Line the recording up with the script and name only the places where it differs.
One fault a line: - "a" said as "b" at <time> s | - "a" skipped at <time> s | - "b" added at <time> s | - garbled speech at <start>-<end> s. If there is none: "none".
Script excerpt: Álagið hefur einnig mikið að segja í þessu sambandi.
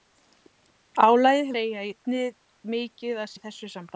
- "hefur" said as "segja" at 1.5 s
- "segja" skipped at 3.3 s